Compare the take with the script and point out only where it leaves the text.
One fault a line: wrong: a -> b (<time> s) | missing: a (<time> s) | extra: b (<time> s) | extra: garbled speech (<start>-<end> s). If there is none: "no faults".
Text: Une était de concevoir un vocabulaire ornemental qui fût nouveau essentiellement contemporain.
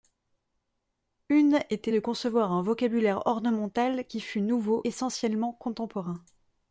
no faults